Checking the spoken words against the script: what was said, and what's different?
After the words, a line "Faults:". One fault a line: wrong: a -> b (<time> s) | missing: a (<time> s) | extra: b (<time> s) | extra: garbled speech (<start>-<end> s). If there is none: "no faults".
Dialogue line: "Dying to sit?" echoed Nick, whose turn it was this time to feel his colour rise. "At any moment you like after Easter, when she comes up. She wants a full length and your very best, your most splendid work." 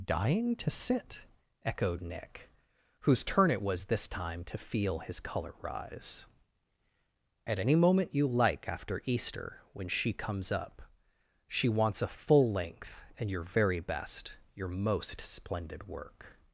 "Dying to sit?" echoed Nick, whose turn it was this time to feel his colour rise. "At any moment you like after Easter, when she comes up. She wants a full length and your very best, your most splendid work."
Faults:
no faults